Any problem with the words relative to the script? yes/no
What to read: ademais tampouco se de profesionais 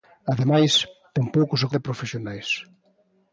no